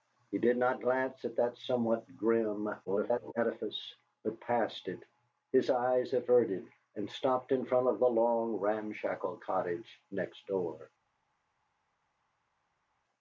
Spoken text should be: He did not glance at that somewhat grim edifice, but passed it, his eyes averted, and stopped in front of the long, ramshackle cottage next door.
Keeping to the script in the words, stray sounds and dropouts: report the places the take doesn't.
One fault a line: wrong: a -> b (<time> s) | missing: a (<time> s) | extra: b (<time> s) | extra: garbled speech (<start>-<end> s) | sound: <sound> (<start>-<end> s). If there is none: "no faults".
extra: garbled speech (2.9-3.3 s)